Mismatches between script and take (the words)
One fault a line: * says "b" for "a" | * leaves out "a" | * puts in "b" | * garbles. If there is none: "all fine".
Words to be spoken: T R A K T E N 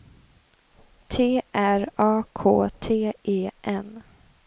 all fine